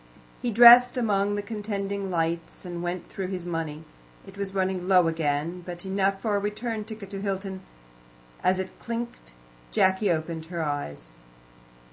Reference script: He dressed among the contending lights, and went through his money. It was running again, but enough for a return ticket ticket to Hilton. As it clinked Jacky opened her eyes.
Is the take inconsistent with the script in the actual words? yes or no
yes